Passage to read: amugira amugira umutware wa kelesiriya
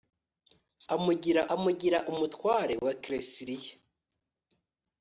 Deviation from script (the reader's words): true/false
false